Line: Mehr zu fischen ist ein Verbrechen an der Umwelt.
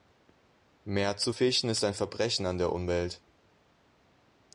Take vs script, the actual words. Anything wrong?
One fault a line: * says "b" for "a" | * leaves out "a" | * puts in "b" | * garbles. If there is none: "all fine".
all fine